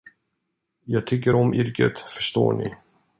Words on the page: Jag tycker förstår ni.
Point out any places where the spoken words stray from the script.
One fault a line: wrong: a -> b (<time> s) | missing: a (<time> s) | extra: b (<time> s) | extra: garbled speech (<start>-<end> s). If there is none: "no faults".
extra: om yrket (1.3 s)